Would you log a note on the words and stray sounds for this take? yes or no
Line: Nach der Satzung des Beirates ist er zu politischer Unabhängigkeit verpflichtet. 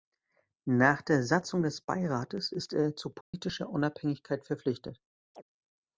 yes